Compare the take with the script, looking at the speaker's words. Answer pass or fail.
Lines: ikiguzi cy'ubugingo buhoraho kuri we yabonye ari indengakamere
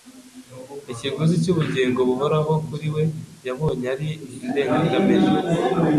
pass